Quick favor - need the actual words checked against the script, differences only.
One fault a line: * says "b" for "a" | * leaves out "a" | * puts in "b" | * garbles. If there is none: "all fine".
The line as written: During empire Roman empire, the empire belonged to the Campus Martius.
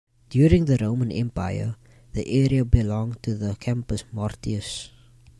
* says "the" for "empire"
* says "area" for "empire"